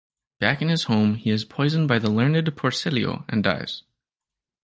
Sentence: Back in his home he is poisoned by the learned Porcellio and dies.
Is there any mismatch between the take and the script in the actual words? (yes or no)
no